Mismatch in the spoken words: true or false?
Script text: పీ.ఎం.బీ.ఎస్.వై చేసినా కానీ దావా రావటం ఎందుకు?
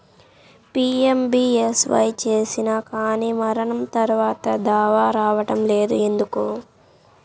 true